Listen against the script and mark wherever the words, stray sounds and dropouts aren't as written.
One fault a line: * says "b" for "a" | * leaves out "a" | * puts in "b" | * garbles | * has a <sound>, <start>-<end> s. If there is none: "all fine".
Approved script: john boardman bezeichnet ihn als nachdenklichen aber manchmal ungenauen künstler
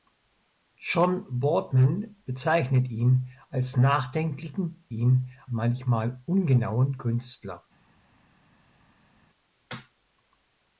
* says "ihn" for "aber"